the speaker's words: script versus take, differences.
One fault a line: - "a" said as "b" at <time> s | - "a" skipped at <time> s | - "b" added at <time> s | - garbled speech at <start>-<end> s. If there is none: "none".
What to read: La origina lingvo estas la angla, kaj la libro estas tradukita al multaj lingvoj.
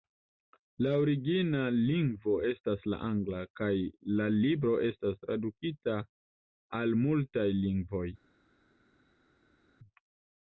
none